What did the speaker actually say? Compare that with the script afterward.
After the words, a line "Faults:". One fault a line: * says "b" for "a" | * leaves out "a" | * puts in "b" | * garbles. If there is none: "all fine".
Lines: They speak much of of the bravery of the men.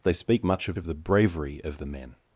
They speak much of of the bravery of the men.
Faults:
all fine